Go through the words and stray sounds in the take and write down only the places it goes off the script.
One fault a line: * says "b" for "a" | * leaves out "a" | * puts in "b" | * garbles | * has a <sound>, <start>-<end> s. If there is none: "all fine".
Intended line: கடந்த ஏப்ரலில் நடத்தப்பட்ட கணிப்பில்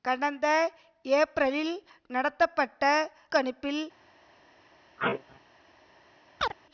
* has a sneeze, 5.0-5.4 s
* has a chirp, 6.4-6.5 s